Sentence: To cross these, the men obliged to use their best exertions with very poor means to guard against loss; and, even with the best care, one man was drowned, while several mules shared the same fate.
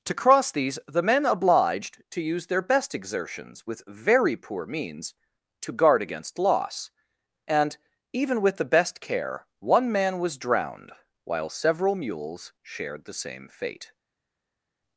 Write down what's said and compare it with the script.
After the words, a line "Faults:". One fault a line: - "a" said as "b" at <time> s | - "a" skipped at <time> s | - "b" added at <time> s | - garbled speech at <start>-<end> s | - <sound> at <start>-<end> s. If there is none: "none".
To cross these, the men obliged to use their best exertions with very poor means to guard against loss; and, even with the best care, one man was drowned, while several mules shared the same fate.
Faults:
none